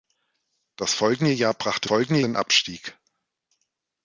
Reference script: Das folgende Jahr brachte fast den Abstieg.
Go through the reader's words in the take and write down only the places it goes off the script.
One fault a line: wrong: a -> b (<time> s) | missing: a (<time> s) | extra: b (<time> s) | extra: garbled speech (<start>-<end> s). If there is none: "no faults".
wrong: fast -> folgende (1.8 s)